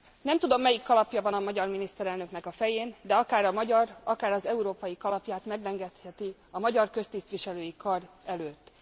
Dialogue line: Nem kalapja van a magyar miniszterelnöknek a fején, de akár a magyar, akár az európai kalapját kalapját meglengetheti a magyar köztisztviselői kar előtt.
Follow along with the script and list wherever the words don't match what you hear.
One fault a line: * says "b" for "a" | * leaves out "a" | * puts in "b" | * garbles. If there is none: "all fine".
* puts in "tudom melyik"
* leaves out "kalapját"